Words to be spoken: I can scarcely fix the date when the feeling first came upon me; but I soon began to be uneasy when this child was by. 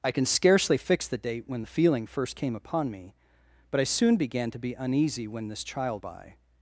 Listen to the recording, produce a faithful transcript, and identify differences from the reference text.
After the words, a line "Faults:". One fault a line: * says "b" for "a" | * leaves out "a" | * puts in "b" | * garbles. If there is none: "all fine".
I can scarcely fix the date when the feeling first came upon me; but I soon began to be uneasy when this child by.
Faults:
* leaves out "was"